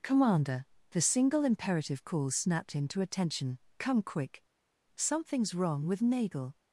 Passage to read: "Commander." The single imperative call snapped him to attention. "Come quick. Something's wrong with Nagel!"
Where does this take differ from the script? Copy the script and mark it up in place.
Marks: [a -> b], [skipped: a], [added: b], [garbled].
"Commander." The single imperative call snapped him to attention. "Come quick. Something's wrong with Nagel!"